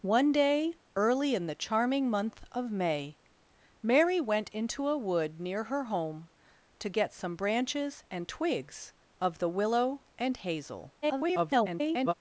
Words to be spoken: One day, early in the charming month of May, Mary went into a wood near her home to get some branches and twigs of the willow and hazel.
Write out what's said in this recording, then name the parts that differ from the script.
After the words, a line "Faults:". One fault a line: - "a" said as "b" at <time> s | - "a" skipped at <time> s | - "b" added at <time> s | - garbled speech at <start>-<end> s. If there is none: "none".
One day, early in the charming month of May, Mary went into a wood near her home to get some branches and twigs of the willow and hazel. [garbled]
Faults:
- garbled speech at 11.0-12.1 s